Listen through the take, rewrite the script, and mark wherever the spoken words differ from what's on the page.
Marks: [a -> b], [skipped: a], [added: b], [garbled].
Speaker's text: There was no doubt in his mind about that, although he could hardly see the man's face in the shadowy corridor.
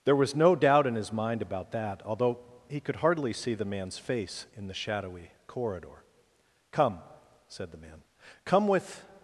There was no doubt in his mind about that, although he could hardly see the man's face in the shadowy corridor. [added: Come said the man come with]